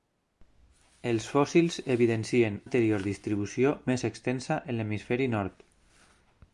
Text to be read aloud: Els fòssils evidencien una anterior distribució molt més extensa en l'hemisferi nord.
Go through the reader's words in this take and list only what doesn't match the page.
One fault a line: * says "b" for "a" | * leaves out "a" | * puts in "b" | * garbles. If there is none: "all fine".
* leaves out "una"
* leaves out "molt"